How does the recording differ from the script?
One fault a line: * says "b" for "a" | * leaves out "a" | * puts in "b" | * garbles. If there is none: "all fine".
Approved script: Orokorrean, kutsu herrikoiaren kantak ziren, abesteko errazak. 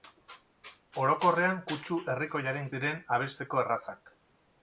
* leaves out "kantak"